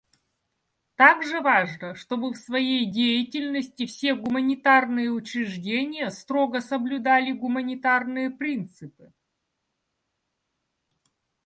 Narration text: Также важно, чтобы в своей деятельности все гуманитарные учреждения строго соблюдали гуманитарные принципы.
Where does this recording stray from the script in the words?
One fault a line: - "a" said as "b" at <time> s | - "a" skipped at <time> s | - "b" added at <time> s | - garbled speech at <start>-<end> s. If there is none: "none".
none